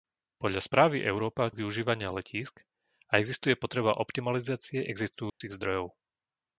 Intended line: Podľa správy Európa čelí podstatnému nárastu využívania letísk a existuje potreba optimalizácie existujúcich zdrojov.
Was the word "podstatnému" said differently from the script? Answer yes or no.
yes